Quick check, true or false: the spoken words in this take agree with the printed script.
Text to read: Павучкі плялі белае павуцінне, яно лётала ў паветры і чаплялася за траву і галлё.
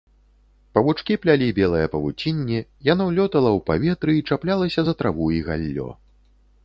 true